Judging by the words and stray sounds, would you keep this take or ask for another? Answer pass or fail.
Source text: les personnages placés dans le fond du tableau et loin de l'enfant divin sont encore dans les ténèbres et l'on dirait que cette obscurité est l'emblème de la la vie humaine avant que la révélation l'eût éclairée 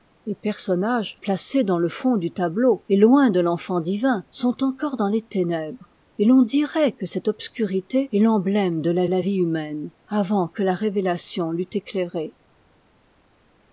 pass